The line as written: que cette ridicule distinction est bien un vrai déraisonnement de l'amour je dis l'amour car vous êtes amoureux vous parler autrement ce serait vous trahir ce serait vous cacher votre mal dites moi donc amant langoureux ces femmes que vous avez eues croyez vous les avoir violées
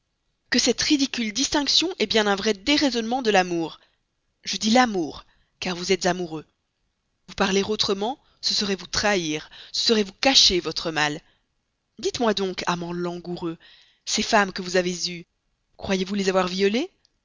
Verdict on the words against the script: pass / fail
pass